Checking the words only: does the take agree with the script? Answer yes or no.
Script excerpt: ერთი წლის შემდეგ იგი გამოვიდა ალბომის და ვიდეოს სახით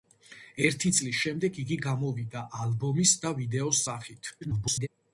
no